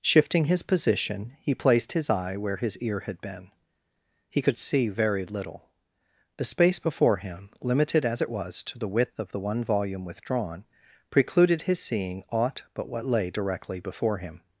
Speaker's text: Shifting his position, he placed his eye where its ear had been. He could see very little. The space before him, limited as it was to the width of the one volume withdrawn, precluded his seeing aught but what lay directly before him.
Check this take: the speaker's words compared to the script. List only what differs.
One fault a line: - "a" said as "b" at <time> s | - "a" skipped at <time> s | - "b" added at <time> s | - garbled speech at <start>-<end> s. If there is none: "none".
- "its" said as "his" at 2.6 s